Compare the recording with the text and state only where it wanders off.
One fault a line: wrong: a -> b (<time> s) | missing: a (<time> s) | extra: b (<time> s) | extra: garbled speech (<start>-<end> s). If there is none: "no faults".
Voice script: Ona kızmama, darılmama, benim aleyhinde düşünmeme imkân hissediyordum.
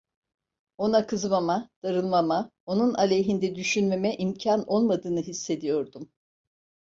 wrong: benim -> onun (2.7 s)
extra: olmadığını (4.7 s)